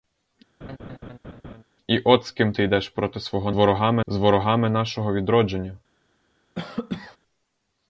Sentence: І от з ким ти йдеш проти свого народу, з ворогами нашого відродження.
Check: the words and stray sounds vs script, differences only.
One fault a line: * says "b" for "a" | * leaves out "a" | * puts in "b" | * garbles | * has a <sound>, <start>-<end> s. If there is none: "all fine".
* has a laugh, 0.6-1.6 s
* says "ворогами" for "народу"
* has a cough, 6.5-7.2 s